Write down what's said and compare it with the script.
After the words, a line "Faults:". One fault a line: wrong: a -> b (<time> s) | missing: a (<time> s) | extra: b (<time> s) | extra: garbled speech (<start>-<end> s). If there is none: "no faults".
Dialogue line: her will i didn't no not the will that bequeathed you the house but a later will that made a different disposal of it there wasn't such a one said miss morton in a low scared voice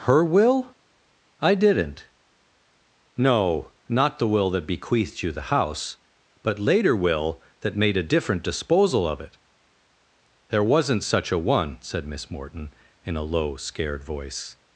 her will i didn't no not the will that bequeathed you the house but later will that made a different disposal of it there wasn't such a one said miss morton in a low scared voice
Faults:
missing: a (6.6 s)